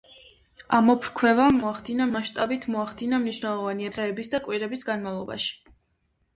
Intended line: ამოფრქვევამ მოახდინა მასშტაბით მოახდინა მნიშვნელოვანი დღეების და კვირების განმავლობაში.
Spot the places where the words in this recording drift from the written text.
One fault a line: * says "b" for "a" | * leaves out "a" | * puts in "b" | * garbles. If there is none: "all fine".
all fine